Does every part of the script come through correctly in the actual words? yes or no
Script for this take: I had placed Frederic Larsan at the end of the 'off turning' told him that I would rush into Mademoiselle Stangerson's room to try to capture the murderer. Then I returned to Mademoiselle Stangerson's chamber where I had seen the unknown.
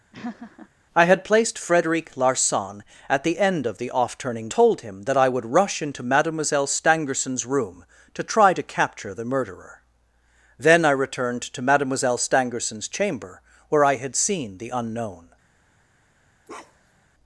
yes